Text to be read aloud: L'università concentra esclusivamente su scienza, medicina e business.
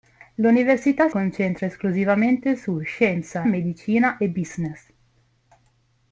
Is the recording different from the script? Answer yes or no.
no